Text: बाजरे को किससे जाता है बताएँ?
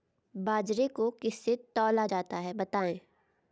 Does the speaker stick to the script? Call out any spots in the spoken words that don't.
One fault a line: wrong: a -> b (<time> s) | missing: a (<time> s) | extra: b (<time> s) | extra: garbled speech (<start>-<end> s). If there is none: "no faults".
extra: तौला (1.8 s)